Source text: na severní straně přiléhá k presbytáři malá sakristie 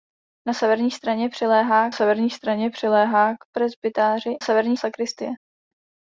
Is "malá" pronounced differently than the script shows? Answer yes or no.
yes